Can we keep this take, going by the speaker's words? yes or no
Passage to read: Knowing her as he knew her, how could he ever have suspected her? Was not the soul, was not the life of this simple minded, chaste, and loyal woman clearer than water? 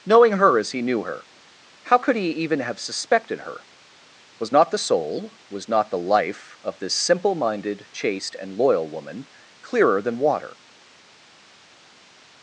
no